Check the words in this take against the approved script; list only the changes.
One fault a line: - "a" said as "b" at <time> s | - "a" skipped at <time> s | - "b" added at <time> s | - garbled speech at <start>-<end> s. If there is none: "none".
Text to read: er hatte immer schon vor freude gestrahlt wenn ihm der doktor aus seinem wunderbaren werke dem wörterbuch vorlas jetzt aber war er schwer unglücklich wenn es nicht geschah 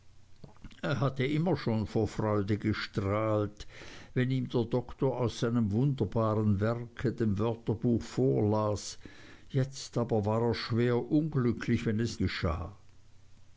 - "nicht" skipped at 12.2 s